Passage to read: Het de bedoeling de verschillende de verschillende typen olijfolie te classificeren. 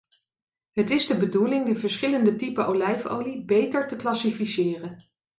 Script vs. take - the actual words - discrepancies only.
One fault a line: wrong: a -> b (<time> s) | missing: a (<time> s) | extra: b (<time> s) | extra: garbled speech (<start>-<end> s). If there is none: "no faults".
extra: is (0.9 s)
missing: de verschillende (2.4 s)
extra: beter (3.5 s)